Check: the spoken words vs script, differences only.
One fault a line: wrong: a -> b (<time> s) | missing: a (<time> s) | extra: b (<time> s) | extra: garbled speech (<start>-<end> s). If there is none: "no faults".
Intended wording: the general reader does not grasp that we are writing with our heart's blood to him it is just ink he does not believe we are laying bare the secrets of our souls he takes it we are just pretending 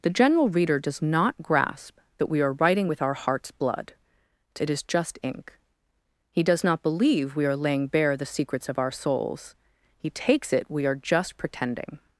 missing: him (4.6 s)